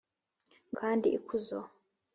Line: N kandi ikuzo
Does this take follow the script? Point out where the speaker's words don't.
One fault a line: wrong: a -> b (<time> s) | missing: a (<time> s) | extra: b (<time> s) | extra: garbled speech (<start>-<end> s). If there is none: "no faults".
no faults